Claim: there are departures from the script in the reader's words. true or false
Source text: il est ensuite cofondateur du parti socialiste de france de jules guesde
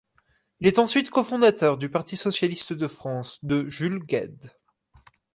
false